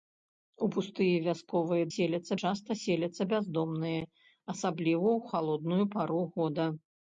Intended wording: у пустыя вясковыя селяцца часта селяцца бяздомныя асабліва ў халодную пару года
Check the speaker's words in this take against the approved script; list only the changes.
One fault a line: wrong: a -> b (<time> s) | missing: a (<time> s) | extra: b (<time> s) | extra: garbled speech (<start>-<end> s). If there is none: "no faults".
no faults